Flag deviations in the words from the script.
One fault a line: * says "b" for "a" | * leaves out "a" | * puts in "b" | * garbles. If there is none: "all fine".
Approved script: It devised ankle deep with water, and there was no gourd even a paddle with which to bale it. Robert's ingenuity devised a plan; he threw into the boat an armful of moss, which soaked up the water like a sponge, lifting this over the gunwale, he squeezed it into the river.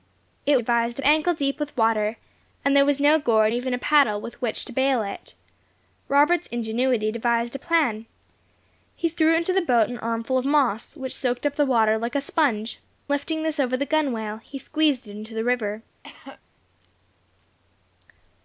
all fine